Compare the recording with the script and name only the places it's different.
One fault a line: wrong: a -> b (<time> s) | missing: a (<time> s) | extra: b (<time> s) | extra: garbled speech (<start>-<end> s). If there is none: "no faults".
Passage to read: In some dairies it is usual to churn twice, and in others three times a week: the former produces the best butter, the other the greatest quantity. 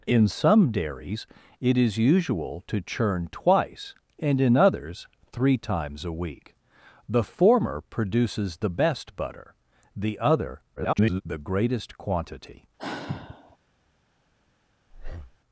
extra: garbled speech (10.8-11.2 s)